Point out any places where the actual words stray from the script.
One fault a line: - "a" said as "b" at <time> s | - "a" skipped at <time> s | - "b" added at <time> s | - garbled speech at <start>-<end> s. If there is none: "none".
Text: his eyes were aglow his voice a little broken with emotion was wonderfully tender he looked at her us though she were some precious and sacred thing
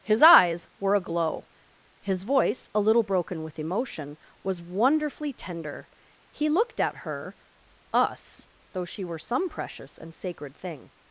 none